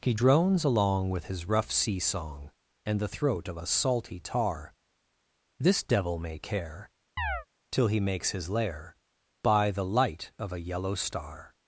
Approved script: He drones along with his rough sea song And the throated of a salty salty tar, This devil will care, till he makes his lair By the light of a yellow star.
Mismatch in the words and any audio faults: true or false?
true